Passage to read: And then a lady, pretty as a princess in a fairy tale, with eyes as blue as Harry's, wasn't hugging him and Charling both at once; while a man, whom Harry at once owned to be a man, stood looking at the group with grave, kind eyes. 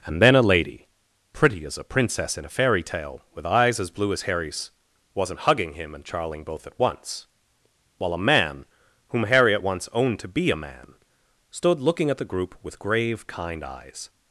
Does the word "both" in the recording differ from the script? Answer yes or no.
no